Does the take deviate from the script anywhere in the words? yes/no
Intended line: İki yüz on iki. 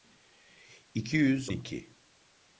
yes